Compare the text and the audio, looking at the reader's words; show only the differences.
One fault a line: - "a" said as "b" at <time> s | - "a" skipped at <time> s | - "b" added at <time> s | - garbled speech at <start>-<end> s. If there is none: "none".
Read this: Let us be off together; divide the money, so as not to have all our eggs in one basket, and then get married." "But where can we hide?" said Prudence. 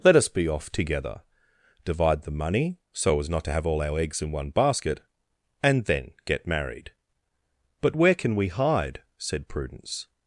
none